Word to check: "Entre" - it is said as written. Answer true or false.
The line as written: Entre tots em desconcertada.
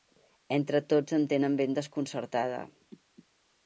true